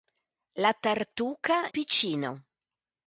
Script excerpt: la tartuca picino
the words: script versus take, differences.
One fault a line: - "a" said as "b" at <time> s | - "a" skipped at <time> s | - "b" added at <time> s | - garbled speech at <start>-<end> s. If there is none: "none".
none